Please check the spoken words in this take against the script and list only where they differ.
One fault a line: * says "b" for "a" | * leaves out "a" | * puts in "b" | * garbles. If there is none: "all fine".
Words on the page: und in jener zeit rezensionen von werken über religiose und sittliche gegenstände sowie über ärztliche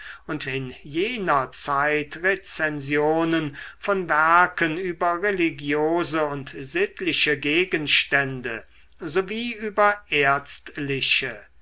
all fine